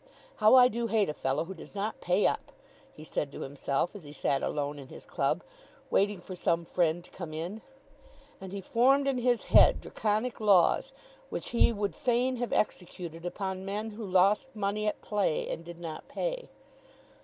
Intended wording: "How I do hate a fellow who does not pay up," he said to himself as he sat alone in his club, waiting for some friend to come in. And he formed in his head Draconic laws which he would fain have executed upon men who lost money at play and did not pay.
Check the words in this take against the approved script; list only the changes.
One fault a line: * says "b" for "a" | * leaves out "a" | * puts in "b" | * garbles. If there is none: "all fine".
all fine